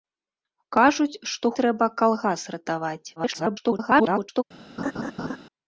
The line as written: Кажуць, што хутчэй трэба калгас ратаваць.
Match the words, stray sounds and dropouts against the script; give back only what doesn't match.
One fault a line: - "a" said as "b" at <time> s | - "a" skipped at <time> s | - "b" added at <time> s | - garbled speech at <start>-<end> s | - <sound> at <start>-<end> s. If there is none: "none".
- "хутчэй" skipped at 1.5 s
- garbled speech at 3.2-4.4 s
- laugh at 4.8-5.4 s